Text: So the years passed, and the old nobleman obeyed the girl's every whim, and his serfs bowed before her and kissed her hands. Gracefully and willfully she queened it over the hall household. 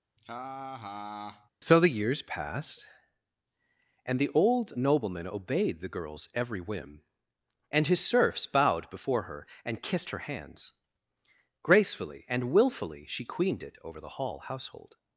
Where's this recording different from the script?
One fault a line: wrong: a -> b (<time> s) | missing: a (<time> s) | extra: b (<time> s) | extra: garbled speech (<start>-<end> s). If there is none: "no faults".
no faults